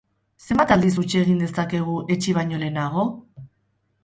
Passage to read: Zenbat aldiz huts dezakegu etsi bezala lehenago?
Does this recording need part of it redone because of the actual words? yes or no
yes